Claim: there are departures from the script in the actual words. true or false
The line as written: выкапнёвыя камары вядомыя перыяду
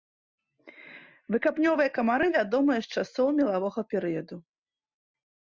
true